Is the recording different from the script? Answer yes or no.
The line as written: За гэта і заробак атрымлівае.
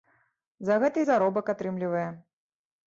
no